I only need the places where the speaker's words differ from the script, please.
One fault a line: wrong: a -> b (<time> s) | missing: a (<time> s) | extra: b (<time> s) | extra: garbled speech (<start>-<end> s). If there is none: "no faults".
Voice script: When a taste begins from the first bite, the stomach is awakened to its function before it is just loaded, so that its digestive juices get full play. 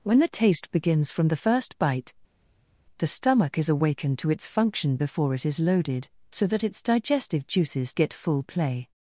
wrong: a -> the (0.2 s)
missing: just (5.6 s)